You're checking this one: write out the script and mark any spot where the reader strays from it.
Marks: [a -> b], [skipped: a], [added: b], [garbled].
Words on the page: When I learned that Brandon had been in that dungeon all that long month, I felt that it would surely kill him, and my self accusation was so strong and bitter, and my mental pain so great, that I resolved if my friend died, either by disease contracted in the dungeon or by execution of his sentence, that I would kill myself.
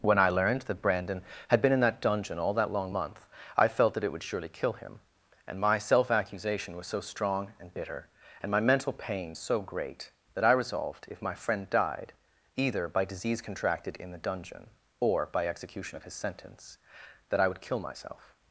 When I learned that Brandon had been in that dungeon all that long month, I felt that it would surely kill him, and my self accusation was so strong and bitter, and my mental pain so great, that I resolved if my friend died, either by disease contracted in the dungeon or by execution of his sentence, that I would kill myself.